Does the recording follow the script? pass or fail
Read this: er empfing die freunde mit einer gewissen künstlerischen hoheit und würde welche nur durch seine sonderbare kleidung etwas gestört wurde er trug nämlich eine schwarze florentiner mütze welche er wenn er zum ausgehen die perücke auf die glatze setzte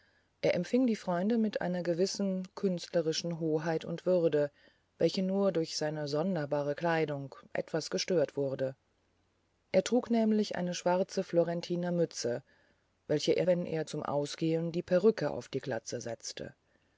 pass